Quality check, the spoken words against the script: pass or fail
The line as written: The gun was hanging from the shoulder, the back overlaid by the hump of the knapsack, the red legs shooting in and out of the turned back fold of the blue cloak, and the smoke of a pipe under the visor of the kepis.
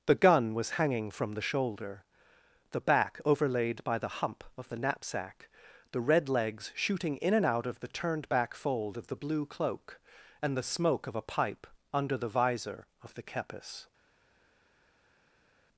pass